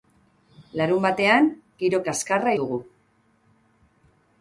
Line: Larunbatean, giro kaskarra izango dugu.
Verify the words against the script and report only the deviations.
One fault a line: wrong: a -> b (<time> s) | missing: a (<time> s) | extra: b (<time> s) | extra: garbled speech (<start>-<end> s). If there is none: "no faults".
missing: izango (2.5 s)